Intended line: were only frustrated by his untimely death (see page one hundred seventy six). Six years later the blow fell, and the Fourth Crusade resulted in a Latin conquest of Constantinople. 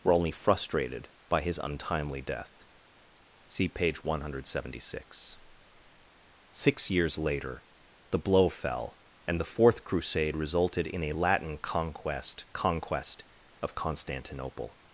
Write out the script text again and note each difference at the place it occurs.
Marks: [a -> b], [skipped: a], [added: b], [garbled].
were only frustrated by his untimely death (see page one hundred seventy six). Six years later the blow fell, and the Fourth Crusade resulted in a Latin conquest [added: conquest] of Constantinople.